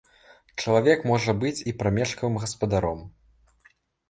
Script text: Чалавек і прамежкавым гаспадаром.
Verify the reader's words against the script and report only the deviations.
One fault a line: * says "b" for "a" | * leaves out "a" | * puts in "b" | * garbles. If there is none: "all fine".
* puts in "можа быць"